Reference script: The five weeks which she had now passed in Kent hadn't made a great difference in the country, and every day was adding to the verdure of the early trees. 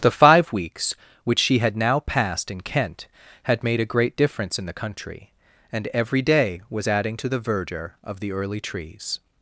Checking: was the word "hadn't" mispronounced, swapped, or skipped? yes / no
yes